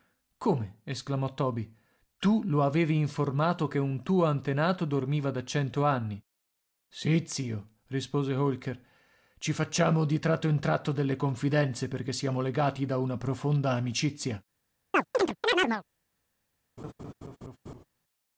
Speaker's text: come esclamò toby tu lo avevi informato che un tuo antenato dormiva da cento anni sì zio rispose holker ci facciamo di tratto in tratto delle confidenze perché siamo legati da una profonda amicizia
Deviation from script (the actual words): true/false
false